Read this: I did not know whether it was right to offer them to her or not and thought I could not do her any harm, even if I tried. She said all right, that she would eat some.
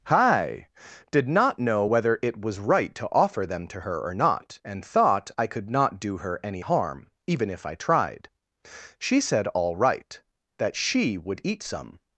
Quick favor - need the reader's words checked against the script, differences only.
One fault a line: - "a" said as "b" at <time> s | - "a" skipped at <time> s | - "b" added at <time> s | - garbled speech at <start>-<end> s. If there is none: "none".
- "I" said as "hi" at 0.1 s